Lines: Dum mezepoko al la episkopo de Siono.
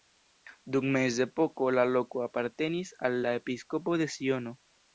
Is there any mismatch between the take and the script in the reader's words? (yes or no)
yes